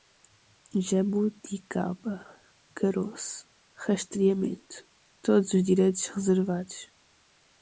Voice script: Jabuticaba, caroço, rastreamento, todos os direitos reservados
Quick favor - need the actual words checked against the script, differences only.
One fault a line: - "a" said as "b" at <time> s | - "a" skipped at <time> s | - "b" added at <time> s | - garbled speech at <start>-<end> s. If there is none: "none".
none